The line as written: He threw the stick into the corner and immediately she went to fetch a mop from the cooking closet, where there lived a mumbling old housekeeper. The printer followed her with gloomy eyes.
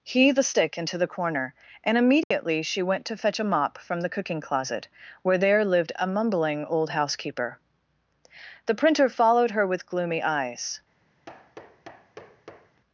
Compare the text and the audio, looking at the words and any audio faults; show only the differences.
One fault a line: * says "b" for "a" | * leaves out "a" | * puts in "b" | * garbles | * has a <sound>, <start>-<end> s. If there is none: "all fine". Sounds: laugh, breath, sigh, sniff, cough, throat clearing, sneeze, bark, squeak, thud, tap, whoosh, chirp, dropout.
* leaves out "threw"
* has a dropout, 2.2-2.3 s
* has a thud, 11.3-12.8 s